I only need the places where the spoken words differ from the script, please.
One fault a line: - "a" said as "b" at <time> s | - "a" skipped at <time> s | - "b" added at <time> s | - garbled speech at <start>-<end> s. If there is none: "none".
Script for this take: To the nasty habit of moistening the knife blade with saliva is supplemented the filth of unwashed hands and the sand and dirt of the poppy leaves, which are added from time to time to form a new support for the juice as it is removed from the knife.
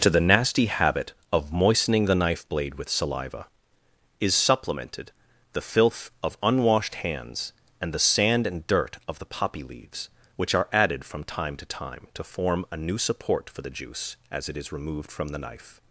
none